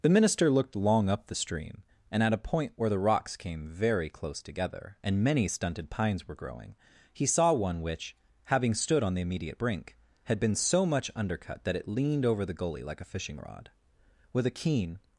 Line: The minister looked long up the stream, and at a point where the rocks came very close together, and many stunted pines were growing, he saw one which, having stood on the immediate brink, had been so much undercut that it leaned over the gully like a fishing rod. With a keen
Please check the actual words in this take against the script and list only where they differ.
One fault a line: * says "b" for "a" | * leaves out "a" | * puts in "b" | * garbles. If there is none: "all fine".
all fine